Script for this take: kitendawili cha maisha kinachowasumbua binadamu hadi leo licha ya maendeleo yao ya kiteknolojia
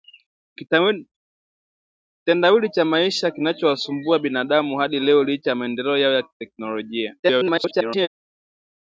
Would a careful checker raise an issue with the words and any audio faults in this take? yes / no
yes